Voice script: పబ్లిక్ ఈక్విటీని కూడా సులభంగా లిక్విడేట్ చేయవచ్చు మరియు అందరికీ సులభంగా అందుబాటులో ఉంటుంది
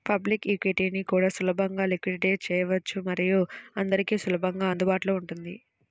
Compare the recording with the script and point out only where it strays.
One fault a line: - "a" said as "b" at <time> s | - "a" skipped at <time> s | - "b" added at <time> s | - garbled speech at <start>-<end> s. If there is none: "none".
none